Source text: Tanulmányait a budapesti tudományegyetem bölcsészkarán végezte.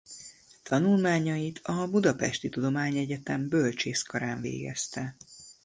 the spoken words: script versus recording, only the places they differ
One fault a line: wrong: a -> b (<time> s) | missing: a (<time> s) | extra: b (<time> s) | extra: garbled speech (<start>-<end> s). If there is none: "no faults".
no faults